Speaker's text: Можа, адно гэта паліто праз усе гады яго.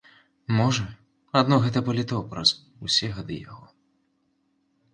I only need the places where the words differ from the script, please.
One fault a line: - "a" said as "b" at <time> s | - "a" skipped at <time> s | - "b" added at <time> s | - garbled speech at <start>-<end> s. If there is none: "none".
none